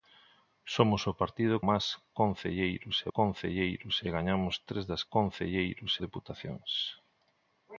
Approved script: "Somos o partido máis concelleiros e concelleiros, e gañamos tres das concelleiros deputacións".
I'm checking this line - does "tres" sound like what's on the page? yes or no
yes